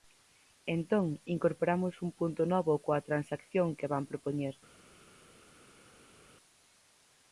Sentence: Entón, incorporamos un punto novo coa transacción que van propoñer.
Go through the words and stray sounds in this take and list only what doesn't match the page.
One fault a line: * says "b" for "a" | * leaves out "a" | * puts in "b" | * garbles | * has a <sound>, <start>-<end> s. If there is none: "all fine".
all fine